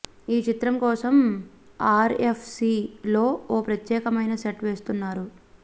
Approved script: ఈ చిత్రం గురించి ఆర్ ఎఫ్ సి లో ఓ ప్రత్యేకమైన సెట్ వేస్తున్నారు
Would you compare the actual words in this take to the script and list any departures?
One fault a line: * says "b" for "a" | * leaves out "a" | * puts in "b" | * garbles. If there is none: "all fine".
* says "కోసం" for "గురించి"